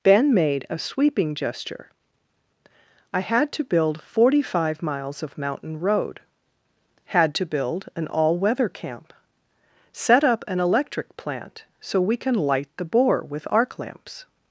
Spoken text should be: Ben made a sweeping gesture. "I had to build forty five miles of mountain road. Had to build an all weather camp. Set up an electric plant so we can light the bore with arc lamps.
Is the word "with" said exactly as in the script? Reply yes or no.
yes